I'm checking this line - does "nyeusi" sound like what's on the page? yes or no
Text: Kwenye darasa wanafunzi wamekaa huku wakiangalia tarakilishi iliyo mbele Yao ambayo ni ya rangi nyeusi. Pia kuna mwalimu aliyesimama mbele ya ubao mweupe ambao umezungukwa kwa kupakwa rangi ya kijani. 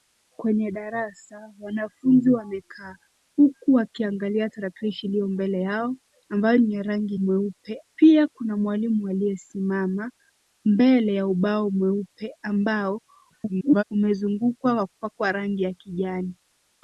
no